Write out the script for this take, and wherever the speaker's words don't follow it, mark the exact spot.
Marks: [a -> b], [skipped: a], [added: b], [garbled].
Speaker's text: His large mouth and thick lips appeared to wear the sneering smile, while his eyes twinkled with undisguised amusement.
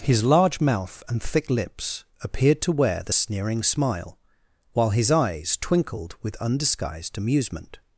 His large mouth and thick lips appeared to wear the sneering smile, while his eyes twinkled with undisguised amusement.